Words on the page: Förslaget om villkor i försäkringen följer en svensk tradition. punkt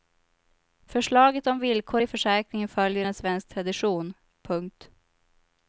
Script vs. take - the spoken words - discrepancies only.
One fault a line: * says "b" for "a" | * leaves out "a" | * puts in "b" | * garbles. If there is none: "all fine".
all fine